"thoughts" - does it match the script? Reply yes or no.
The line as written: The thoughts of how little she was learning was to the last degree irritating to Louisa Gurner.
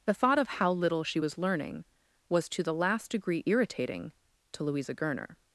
no